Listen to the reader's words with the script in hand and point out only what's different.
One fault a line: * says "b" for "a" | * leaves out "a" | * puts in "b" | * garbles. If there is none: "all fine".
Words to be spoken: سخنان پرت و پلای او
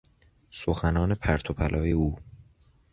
all fine